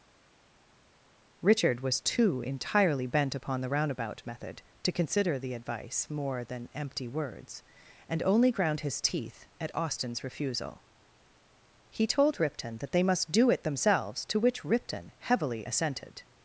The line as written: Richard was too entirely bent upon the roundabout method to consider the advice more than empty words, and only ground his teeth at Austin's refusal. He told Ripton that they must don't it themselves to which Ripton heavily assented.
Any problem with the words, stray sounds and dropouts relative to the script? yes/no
yes